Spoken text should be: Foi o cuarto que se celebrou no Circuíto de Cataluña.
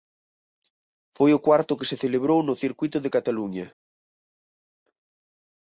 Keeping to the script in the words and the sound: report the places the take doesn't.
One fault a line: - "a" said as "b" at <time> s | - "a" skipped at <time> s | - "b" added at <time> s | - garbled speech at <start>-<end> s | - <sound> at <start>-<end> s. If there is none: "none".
none